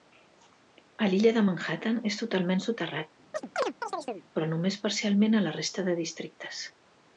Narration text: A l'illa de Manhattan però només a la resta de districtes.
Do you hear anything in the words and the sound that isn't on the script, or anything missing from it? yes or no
yes